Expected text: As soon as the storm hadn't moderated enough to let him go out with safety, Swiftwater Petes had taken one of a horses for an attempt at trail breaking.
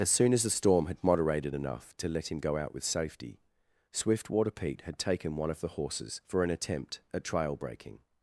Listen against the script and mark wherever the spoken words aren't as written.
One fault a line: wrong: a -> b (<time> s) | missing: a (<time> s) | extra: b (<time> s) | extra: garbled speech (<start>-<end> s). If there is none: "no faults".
wrong: hadn't -> had (0.9 s)
wrong: Petes -> Pete (4.5 s)
wrong: a -> the (5.6 s)